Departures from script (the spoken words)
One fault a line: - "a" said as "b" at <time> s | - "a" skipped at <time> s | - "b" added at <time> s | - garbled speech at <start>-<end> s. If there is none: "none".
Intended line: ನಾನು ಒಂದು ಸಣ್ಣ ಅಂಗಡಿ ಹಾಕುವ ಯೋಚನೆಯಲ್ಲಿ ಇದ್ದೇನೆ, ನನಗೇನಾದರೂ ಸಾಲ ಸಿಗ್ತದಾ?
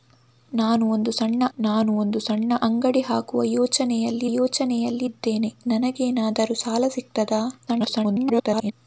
- "ನಾನು ಒಂದು ಸಣ್ಣ" added at 1.6 s
- "ಯೋಚನೆಯಲ್ಲಿ" added at 4.3 s
- garbled speech at 7.7-8.7 s